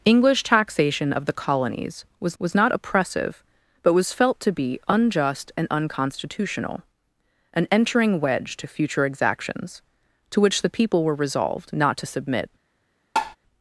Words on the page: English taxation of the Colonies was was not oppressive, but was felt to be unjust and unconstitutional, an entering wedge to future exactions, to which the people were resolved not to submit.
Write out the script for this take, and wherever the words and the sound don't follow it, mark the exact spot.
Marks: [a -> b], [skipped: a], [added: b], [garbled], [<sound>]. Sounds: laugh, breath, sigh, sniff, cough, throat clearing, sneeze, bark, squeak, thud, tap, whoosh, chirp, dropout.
English taxation of the Colonies was was not oppressive, but was felt to be unjust and unconstitutional, an entering wedge to future exactions, to which the people were resolved not to submit. [tap]